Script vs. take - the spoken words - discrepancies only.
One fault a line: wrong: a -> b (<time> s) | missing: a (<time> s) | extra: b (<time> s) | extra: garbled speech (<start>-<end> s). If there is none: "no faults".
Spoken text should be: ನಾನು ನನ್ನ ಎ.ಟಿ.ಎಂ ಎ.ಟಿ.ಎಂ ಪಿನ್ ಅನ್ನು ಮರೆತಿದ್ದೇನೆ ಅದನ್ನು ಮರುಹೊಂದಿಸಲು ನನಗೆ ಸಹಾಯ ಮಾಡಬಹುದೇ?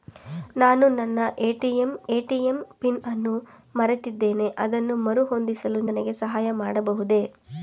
no faults